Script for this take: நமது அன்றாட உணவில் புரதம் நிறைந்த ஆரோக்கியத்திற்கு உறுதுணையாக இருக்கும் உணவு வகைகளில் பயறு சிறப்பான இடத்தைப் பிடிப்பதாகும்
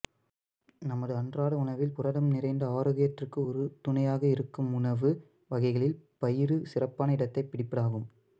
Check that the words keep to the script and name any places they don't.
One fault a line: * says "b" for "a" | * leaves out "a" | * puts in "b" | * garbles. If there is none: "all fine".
all fine